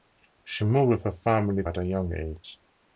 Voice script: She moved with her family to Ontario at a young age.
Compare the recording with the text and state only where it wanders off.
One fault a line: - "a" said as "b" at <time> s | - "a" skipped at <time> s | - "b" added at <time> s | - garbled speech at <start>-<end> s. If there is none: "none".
- "to Ontario" skipped at 1.6 s